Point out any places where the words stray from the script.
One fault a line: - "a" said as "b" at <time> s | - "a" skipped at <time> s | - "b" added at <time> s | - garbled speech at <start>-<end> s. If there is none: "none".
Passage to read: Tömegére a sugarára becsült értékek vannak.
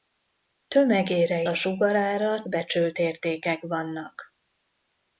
none